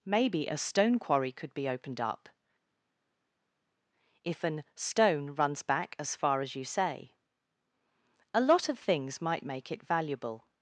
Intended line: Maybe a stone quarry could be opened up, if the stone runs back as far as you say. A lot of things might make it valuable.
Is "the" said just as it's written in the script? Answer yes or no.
no